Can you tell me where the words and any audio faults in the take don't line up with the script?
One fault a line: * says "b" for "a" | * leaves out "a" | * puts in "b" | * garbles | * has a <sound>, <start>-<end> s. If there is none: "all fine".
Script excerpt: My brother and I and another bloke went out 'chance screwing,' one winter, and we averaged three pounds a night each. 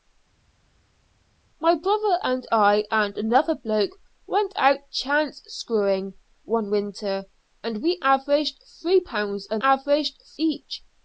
* says "averaged" for "night"